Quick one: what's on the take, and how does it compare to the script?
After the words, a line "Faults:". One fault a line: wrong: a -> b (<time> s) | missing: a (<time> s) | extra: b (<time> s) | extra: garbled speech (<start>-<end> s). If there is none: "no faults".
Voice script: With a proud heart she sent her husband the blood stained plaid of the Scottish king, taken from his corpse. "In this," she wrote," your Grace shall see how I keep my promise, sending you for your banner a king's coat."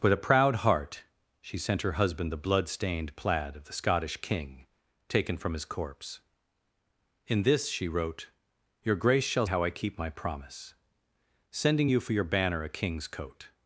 With a proud heart she sent her husband the blood stained plaid of the Scottish king, taken from his corpse. "In this," she wrote," your Grace shall how I keep my promise, sending you for your banner a king's coat."
Faults:
missing: see (9.4 s)